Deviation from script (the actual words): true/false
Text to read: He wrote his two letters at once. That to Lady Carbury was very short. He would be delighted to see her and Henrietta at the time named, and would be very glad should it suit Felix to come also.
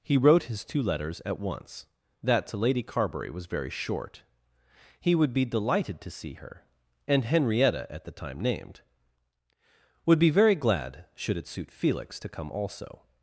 true